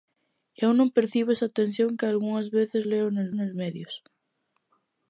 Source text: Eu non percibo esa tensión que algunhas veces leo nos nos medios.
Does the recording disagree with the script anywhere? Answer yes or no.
no